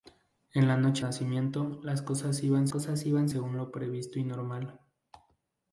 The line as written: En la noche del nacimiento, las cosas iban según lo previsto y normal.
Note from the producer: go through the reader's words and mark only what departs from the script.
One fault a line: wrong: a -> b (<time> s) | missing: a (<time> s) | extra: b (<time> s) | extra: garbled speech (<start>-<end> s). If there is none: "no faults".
missing: del (1.1 s)
extra: cosas iban (2.7 s)